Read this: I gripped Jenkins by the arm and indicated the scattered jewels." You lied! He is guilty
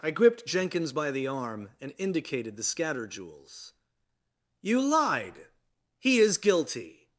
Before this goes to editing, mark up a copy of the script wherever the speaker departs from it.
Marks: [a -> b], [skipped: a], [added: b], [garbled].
I gripped Jenkins by the arm and indicated the [scattered -> scatter] jewels." You lied! He is guilty